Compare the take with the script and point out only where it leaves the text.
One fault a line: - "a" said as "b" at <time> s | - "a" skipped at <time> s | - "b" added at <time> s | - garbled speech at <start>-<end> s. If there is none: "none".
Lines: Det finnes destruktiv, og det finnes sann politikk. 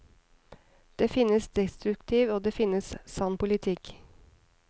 none